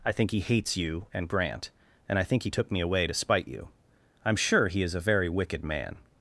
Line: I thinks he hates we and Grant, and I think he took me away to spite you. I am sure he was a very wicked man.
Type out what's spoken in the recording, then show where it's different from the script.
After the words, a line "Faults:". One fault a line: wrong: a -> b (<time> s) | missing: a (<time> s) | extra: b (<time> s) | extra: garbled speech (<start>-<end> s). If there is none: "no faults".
I think he hates you and Grant, and I think he took me away to spite you. I am sure he is a very wicked man.
Faults:
wrong: thinks -> think (0.1 s)
wrong: we -> you (0.8 s)
wrong: was -> is (4.8 s)